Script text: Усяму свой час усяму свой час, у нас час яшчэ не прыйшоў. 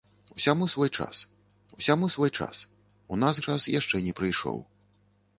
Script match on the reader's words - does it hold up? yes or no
yes